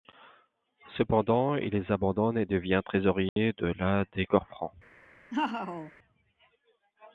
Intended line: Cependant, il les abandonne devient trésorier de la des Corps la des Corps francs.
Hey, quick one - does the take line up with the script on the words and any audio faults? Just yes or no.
no